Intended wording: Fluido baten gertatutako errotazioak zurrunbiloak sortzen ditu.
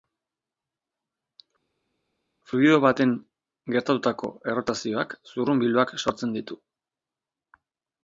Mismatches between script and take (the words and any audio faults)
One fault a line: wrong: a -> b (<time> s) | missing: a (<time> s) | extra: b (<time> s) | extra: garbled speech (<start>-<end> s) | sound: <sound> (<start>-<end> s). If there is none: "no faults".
no faults